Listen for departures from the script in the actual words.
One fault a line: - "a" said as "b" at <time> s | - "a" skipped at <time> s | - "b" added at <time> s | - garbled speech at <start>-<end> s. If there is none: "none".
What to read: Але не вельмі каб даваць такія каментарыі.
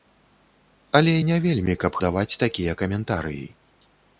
none